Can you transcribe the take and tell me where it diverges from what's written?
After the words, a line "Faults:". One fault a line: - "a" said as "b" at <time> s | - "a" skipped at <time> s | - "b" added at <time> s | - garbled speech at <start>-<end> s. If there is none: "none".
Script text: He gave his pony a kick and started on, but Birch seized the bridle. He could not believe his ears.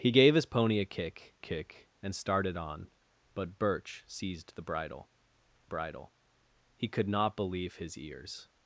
He gave his pony a kick kick and started on, but Birch seized the bridle bridle. He could not believe his ears.
Faults:
- "kick" added at 1.4 s
- "bridle" added at 5.6 s